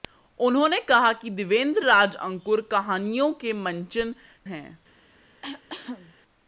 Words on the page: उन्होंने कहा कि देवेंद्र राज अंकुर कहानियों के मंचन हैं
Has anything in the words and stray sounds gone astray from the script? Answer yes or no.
yes